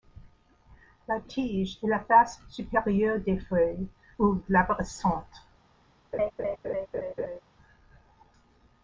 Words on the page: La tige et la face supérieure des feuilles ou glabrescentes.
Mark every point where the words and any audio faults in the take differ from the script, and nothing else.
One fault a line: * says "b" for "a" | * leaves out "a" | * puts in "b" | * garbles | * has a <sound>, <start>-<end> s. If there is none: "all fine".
* has a laugh, 6.1-7.4 s